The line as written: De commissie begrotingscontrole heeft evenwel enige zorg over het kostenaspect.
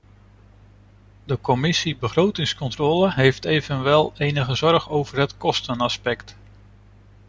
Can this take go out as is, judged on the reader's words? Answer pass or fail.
pass